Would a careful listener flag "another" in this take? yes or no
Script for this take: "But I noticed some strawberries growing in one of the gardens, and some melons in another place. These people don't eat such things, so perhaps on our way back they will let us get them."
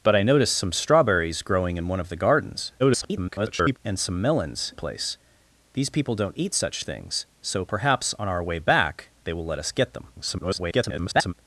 yes